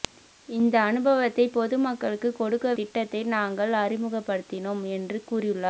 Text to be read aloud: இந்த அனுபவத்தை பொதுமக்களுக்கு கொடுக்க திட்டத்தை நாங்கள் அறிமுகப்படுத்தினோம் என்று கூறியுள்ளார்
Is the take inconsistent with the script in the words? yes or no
no